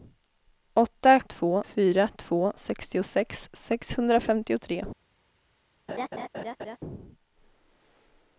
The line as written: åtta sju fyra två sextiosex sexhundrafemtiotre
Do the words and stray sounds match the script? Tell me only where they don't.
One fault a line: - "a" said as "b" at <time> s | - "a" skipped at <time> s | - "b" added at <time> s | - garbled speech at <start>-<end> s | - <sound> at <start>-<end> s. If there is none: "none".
- "sju" said as "två" at 1.2 s
- laugh at 5.9-6.8 s